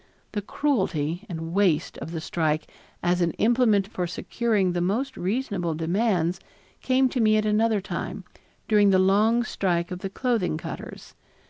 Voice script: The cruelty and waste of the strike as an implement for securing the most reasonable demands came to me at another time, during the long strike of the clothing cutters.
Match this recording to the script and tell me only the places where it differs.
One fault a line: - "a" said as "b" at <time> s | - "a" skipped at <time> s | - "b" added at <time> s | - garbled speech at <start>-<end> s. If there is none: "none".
none